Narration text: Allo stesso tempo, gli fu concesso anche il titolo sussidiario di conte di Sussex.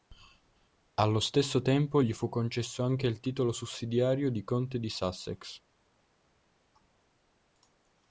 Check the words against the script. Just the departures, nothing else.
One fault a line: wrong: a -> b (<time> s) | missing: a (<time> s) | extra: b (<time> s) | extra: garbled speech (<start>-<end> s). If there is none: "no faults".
no faults